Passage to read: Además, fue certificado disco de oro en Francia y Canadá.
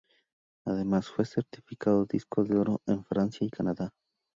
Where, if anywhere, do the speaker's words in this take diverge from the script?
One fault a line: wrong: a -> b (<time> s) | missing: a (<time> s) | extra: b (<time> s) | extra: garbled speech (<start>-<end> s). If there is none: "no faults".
no faults